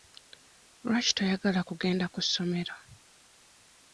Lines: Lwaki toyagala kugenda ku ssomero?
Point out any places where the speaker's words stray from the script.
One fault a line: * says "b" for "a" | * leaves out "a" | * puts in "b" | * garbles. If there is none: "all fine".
all fine